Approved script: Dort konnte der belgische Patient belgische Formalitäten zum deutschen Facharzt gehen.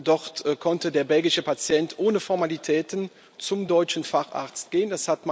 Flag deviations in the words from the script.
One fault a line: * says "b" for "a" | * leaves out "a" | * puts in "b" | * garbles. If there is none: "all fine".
* says "ohne" for "belgische"